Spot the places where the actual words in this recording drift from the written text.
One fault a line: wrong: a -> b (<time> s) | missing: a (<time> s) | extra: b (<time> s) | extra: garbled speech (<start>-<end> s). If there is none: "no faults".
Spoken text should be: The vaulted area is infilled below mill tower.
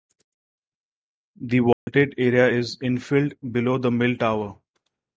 extra: the (3.8 s)